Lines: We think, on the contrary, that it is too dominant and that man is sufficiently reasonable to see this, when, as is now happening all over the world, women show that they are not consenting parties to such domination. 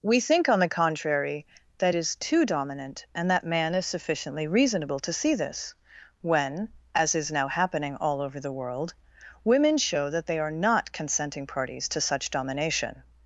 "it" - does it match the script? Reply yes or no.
no